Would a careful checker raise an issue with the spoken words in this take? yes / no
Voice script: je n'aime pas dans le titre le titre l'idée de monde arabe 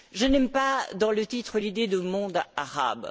yes